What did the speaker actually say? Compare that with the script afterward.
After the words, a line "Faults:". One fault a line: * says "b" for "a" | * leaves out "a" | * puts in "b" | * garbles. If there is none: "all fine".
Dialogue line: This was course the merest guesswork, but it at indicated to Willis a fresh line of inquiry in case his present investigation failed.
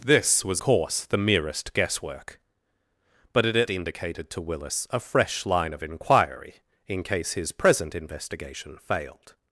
This was course the merest guesswork, but it at indicated to Willis a fresh line of inquiry in case his present investigation failed.
Faults:
all fine